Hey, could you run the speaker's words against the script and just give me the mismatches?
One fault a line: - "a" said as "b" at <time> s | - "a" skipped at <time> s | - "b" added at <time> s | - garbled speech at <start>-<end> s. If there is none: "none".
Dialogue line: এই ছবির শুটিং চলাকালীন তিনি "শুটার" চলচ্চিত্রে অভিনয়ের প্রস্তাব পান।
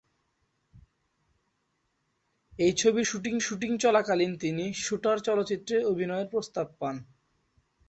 - "শুটিং" added at 3.4 s